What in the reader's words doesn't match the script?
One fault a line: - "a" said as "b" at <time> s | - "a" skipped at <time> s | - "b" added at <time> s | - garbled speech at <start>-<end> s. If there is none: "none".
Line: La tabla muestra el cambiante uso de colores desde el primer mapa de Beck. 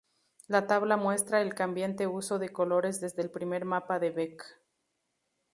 none